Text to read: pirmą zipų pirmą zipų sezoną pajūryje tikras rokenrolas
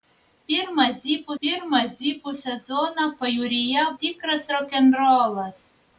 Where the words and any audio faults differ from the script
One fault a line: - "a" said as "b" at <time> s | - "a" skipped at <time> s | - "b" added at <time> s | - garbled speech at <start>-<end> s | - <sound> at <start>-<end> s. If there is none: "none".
none